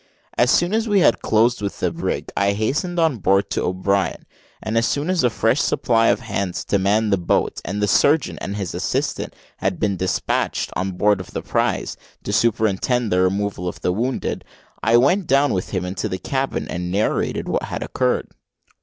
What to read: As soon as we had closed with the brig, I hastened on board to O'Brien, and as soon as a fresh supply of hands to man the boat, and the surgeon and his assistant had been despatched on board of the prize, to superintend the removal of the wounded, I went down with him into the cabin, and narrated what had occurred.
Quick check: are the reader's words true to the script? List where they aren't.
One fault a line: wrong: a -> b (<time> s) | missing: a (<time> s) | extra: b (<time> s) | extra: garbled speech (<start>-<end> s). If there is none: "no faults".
no faults